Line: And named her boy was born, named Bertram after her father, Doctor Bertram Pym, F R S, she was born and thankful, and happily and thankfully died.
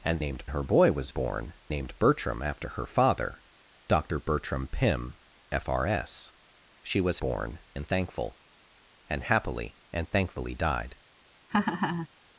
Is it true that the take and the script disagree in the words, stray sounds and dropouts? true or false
true